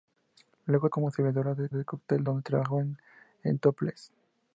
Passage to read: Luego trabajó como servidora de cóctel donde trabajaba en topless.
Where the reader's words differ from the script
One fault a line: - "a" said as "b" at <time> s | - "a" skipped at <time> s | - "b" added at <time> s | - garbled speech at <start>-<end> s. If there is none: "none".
- "trabajó" skipped at 0.9 s
- "de" added at 1.7 s